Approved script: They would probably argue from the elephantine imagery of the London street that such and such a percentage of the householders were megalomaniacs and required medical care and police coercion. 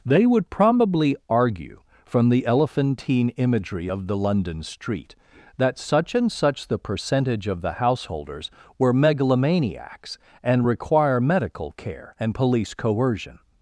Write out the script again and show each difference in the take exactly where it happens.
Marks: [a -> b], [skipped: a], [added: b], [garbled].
They would probably argue from the elephantine imagery of the London street that such and such [a -> the] percentage of the householders were megalomaniacs and [required -> require] medical care and police coercion.